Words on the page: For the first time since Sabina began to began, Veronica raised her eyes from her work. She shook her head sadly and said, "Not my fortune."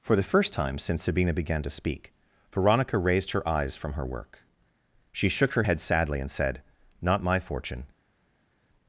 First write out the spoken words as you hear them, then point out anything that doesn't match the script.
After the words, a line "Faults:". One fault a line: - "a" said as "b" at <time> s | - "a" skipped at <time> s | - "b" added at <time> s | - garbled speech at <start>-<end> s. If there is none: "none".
For the first time since Sabina began to speak, Veronica raised her eyes from her work. She shook her head sadly and said, "Not my fortune."
Faults:
- "began" said as "speak" at 1.7 s